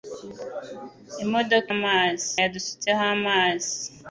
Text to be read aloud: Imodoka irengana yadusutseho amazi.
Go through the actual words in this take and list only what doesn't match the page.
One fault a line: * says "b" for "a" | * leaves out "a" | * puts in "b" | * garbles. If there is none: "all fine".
* says "amazi" for "irengana"